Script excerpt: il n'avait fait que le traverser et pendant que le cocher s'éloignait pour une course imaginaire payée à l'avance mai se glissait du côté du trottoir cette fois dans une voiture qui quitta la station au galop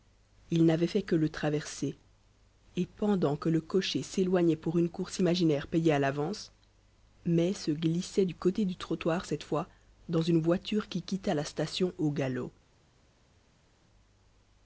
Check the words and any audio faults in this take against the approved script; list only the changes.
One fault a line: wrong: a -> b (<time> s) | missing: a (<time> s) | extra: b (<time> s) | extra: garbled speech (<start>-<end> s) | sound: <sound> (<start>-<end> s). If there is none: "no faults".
no faults